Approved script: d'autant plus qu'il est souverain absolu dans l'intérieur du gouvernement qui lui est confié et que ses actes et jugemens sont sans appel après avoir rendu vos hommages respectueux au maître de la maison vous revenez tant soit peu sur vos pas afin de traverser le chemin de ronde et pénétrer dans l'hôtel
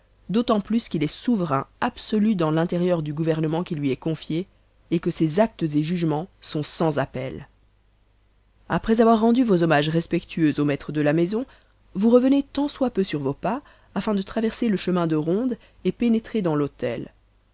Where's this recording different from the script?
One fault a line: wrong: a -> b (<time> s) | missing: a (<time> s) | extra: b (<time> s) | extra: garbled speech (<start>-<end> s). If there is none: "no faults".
no faults